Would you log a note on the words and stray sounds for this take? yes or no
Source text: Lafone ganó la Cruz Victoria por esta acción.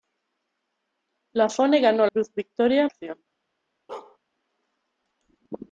yes